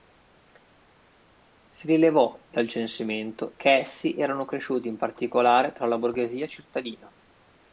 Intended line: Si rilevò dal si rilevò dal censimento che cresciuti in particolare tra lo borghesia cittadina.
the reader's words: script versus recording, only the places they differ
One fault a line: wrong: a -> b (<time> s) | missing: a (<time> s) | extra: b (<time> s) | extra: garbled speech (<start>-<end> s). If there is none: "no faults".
wrong: si rilevò dal censimento che -> censimento che essi erano (2.7 s)
wrong: lo -> la (5.9 s)